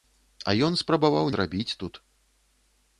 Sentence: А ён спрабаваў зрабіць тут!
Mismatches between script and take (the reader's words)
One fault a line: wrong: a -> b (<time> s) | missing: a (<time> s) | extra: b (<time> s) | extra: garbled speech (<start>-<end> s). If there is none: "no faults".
no faults